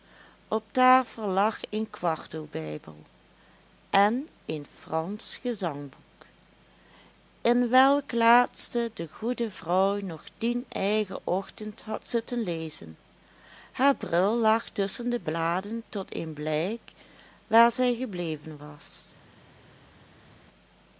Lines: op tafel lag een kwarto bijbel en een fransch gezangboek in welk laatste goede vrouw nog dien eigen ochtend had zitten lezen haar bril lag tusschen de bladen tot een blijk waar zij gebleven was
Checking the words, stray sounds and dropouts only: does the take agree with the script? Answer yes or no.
no